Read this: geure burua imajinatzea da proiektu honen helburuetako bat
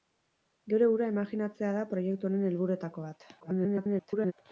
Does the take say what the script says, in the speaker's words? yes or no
no